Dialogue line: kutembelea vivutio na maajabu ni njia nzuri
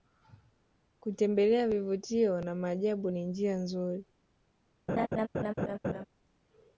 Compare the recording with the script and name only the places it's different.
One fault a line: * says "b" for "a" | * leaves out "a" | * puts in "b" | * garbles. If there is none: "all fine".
all fine